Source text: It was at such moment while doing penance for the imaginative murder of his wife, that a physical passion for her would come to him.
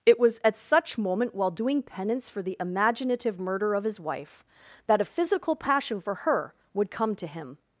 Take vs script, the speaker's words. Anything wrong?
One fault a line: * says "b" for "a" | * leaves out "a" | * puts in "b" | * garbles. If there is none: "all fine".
all fine